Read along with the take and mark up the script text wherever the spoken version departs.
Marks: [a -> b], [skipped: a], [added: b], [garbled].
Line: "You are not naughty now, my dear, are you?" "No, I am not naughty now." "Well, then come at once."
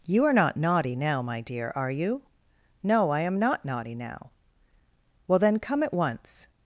"You are not naughty now, my dear, are you?" "No, I am not naughty now." "Well, then come at once."